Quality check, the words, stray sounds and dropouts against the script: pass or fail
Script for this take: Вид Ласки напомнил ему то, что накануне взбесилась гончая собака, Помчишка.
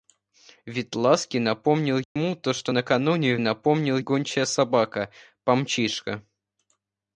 fail